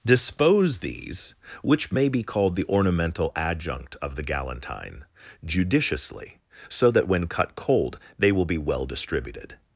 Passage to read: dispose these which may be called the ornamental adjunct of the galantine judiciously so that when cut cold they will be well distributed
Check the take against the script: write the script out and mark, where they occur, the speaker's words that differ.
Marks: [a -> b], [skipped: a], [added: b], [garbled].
dispose these which may be called the ornamental adjunct of the galantine judiciously so that when cut cold they will be well distributed